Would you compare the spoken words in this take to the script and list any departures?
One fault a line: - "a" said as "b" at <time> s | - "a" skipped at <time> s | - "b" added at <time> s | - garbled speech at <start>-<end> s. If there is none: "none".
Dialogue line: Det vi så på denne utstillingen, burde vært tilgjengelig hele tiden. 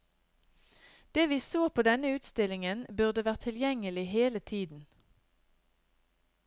none